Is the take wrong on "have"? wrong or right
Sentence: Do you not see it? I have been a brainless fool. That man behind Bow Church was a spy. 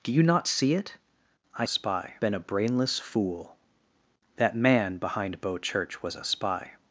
wrong